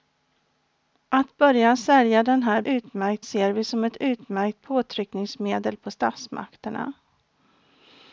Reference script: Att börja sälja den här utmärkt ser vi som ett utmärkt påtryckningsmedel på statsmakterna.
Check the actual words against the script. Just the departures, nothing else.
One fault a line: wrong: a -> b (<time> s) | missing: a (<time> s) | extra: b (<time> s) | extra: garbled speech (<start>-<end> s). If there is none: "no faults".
no faults